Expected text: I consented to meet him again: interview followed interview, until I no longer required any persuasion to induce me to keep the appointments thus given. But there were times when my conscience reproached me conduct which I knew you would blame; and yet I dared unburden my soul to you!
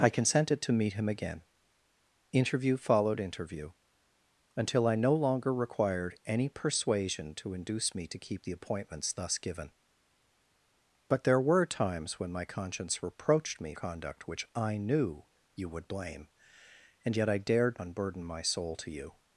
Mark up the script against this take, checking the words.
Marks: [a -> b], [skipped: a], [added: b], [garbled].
I consented to meet him again: interview followed interview, until I no longer required any persuasion to induce me to keep the appointments thus given. But there were times when my conscience reproached me conduct which I knew you would blame; and yet I dared unburden my soul to you!